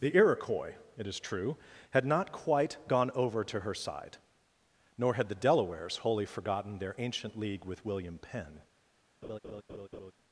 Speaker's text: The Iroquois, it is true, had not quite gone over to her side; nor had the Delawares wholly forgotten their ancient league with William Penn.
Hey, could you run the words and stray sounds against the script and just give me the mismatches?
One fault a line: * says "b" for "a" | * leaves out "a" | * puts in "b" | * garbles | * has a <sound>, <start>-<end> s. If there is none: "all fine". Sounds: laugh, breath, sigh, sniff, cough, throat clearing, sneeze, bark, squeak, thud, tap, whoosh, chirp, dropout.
* has a laugh, 9.2-10.1 s